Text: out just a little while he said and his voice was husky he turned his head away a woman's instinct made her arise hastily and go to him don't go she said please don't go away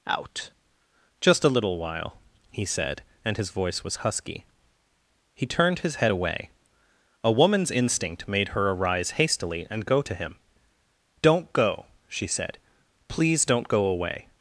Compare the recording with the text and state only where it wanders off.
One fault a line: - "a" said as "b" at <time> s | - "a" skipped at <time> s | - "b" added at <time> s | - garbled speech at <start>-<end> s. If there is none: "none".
none